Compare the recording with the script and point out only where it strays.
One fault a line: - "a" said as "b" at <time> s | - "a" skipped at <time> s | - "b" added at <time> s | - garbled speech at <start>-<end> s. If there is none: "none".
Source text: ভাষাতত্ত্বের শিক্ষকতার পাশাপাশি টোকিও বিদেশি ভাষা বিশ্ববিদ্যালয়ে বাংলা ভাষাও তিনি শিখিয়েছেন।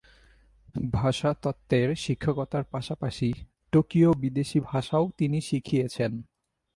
- "ভাষা বিশ্ববিদ্যালয়ে বাংলা" skipped at 4.6 s